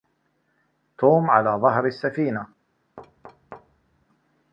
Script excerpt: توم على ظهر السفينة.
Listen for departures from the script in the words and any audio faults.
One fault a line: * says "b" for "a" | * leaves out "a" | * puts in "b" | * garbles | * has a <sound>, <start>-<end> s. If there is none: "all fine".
* has a thud, 3.0-4.1 s